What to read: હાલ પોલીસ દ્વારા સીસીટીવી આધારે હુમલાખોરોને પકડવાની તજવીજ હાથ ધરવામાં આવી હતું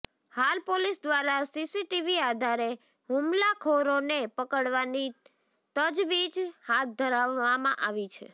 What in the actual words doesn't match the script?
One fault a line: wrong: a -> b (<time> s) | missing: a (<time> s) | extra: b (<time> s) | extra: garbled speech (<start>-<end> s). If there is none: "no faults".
wrong: હતું -> છે (8.1 s)